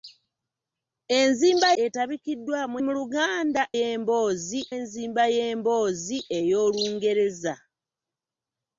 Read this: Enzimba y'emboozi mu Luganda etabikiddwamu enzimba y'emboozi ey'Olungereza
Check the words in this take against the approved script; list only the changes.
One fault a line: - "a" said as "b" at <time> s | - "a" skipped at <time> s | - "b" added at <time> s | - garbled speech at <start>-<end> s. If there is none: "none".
- "y'emboozi" said as "etabikiddwamu" at 1.8 s
- "etabikiddwamu" said as "y'emboozi" at 3.8 s